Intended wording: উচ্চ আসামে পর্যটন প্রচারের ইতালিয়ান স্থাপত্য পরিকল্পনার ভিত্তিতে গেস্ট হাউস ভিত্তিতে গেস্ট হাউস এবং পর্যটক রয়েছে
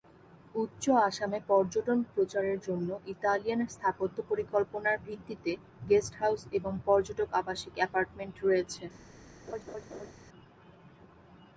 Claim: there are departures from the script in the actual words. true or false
true